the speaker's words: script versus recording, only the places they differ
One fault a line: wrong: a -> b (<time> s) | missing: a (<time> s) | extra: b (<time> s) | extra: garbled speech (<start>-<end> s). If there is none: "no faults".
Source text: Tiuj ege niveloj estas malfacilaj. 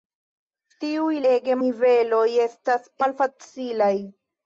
no faults